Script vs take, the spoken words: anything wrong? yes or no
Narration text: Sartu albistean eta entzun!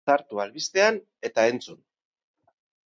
no